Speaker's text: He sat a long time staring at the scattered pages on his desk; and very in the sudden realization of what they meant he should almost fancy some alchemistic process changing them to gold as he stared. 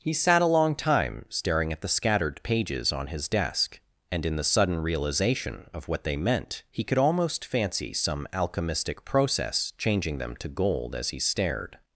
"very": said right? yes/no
no